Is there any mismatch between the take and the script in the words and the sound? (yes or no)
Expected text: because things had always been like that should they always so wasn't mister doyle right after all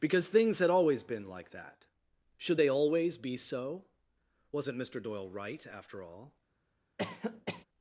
yes